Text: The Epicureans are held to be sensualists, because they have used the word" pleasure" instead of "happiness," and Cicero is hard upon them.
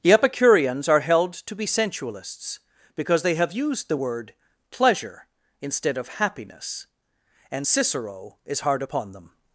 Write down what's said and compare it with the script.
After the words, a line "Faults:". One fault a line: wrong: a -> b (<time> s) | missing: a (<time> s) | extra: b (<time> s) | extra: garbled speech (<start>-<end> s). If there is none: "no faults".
The Epicureans are held to be sensualists, because they have used the word" pleasure" instead of "happiness," and Cicero is hard upon them.
Faults:
no faults